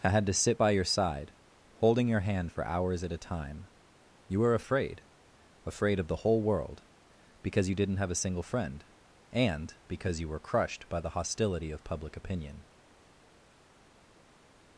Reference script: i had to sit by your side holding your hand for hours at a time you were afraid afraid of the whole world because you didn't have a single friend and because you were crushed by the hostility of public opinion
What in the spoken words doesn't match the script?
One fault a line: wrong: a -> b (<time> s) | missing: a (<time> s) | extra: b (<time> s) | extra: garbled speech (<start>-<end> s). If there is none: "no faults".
no faults